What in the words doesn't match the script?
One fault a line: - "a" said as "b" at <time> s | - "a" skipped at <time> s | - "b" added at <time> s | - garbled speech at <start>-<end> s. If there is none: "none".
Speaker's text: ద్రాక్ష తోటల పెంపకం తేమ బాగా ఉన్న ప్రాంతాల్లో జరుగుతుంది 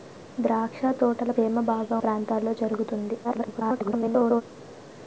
- "పెంపకం" skipped at 1.3 s
- "ఉన్న" skipped at 2.0 s
- garbled speech at 3.2-4.4 s